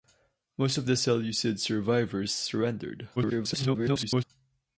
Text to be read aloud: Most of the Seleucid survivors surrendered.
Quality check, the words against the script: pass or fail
fail